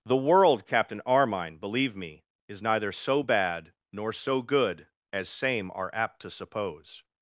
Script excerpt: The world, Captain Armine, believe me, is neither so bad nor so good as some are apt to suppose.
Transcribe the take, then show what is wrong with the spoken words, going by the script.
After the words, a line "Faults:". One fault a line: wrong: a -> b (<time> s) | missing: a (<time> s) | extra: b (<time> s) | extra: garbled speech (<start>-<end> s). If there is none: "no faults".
The world, Captain Armine, believe me, is neither so bad nor so good as same are apt to suppose.
Faults:
wrong: some -> same (5.3 s)